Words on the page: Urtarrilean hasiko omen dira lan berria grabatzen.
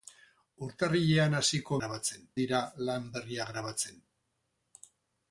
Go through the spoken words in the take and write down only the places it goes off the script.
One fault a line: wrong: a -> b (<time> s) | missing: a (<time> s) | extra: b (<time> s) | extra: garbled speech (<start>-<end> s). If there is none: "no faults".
wrong: omen -> grabatzen (1.8 s)